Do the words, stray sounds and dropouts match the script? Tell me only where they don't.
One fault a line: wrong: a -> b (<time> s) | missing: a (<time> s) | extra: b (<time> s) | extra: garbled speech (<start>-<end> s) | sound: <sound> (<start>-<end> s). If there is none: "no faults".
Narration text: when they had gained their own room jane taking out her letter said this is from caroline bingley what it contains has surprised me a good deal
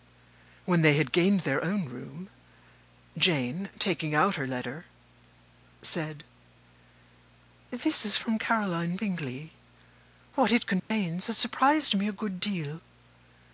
sound: dropout (10.8-10.9 s)